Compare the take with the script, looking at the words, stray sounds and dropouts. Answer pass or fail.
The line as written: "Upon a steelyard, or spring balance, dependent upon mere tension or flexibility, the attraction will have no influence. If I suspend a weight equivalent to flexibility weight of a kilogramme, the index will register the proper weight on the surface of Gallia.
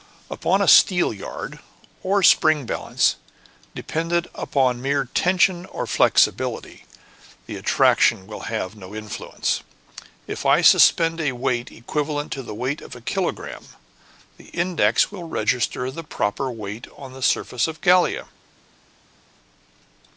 fail